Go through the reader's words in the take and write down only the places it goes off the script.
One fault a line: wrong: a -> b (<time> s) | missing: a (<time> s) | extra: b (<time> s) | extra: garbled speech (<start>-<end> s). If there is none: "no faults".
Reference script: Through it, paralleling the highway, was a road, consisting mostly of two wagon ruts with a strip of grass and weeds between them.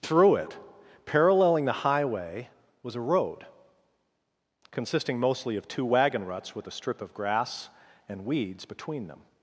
no faults